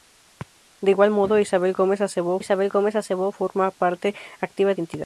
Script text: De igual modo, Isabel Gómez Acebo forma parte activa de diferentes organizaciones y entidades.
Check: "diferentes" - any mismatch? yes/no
yes